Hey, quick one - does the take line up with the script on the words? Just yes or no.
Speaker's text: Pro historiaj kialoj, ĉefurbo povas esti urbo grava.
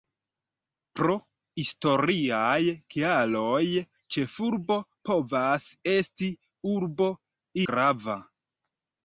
yes